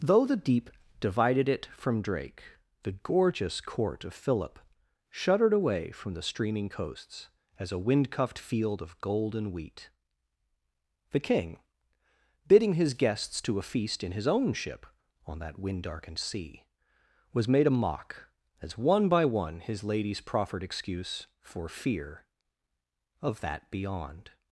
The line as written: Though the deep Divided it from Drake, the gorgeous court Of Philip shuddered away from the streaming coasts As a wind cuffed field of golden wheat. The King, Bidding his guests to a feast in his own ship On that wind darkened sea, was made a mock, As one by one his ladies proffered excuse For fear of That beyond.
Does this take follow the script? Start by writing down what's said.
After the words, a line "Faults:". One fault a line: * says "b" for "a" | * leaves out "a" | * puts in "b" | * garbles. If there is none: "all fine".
Though the deep Divided it from Drake, the gorgeous court Of Philip shuddered away from the streaming coasts As a wind cuffed field of golden wheat. The King, Bidding his guests to a feast in his own ship On that wind darkened sea, was made a mock, As one by one his ladies proffered excuse For fear of That beyond.
Faults:
all fine